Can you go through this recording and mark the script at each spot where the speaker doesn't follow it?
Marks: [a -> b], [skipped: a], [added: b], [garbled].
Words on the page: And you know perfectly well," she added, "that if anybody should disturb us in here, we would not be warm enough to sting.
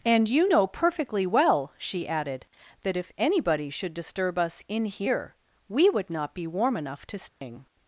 And you know perfectly well," she added, "that if anybody should disturb us in here, we would not be warm enough to sting.